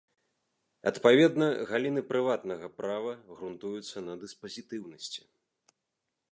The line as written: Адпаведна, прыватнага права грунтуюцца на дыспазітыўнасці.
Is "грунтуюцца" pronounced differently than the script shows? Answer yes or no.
no